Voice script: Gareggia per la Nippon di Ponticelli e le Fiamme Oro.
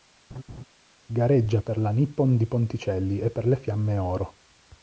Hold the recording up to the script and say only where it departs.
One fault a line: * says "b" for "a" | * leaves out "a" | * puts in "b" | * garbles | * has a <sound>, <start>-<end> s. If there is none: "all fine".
* has a laugh, 0.3-0.6 s
* puts in "per"